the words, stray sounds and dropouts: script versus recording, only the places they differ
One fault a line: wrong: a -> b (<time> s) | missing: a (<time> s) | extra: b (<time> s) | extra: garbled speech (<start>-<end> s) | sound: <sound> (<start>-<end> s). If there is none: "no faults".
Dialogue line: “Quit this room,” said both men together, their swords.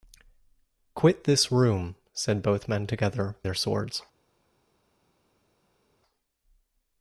no faults